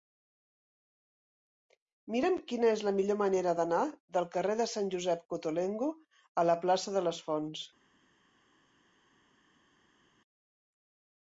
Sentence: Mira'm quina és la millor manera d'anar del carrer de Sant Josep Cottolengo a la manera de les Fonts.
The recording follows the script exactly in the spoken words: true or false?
false